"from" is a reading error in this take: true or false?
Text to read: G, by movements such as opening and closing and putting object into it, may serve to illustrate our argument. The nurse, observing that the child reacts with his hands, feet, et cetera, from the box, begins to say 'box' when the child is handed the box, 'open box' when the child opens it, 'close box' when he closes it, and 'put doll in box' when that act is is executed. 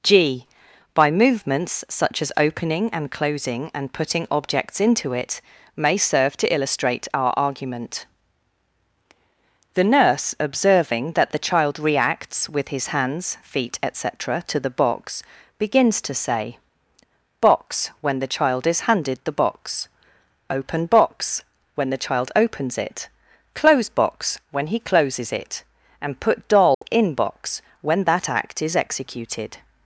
true